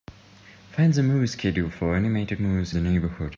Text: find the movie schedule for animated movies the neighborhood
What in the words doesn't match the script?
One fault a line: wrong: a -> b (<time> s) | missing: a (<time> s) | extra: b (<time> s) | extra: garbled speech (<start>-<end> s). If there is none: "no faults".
no faults